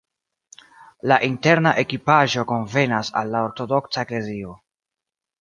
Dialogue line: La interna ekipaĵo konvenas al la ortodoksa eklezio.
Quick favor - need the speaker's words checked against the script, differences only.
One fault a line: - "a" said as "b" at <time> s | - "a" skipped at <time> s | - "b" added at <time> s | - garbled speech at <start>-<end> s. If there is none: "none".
none